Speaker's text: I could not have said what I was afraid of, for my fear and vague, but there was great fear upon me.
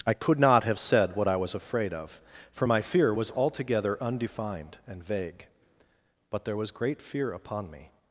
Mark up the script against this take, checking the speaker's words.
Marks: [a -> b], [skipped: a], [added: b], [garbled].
I could not have said what I was afraid of, for my fear [added: was altogether undefined] and vague, but there was great fear upon me.